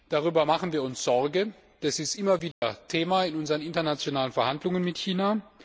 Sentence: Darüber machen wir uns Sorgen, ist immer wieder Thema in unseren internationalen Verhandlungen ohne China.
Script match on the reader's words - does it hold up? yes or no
no